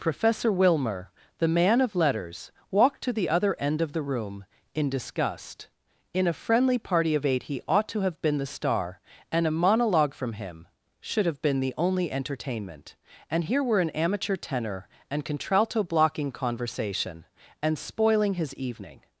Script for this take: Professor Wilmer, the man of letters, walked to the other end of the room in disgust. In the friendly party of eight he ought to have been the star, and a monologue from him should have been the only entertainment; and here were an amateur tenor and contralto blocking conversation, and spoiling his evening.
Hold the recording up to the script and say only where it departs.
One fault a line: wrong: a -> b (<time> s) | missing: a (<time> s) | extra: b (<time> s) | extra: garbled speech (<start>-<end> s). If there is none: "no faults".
wrong: the -> a (6.2 s)